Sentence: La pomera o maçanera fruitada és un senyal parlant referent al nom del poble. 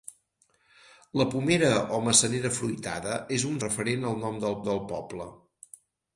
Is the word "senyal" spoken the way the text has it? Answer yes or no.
no